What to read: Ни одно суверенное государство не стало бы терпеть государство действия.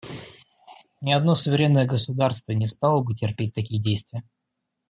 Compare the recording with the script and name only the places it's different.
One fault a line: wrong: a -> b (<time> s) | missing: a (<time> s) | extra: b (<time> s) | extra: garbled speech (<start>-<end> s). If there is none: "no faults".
wrong: государство -> такие (3.5 s)